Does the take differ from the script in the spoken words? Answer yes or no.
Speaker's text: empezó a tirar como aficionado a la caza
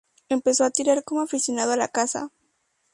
no